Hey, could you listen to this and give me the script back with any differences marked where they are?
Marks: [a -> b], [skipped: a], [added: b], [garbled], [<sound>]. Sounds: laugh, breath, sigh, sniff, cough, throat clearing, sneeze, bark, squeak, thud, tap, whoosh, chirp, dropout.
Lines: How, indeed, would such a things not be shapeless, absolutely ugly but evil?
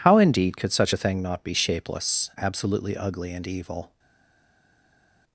How, indeed, [would -> could] such a [things -> thing] not be shapeless, absolutely ugly [but -> and] evil?